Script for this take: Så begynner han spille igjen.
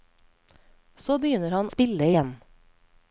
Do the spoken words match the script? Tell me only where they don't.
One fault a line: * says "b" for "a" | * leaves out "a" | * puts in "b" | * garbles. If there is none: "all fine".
all fine